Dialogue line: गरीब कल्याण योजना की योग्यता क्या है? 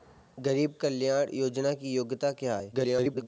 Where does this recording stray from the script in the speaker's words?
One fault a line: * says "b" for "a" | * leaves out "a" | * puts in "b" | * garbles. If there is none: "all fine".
* garbles